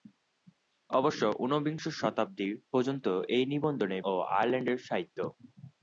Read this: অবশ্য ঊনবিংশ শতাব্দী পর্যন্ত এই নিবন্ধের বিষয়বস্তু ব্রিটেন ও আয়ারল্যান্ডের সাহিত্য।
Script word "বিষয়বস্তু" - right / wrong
wrong